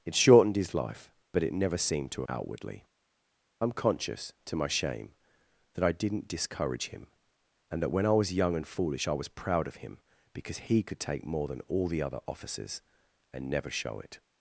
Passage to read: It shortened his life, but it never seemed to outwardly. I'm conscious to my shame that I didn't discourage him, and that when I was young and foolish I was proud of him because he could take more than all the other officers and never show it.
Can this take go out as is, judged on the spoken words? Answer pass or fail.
pass